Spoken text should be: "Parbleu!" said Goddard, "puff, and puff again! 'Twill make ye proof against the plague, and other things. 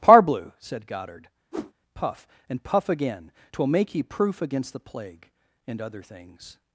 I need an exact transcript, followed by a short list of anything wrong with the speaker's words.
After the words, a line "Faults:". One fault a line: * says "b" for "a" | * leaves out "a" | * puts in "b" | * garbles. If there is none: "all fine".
"Parbleu!" said Goddard, "puff, and puff again! 'Twill make ye proof against the plague, and other things.
Faults:
all fine